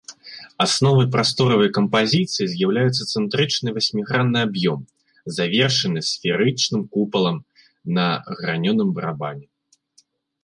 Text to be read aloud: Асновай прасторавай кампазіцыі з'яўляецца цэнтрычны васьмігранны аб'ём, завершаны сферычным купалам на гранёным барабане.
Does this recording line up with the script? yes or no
yes